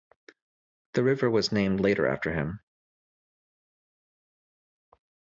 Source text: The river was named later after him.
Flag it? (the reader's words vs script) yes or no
no